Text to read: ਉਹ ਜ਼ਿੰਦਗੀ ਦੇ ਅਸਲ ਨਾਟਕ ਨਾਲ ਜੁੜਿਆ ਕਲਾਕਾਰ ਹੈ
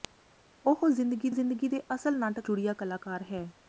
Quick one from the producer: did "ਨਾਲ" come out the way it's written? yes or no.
no